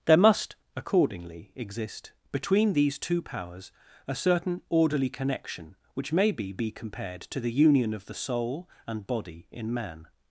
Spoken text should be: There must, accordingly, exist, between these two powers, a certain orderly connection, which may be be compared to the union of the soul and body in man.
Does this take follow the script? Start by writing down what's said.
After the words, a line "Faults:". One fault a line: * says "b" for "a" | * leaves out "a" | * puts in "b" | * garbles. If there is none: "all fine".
There must, accordingly, exist, between these two powers, a certain orderly connection, which may be be compared to the union of the soul and body in man.
Faults:
all fine